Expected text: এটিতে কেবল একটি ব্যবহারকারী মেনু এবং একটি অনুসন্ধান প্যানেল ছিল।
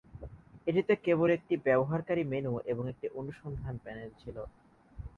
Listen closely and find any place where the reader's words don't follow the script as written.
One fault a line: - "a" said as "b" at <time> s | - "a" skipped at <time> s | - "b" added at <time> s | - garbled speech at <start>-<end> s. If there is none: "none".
none